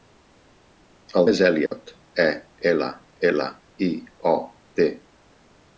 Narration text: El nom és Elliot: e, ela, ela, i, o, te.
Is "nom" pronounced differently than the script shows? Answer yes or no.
yes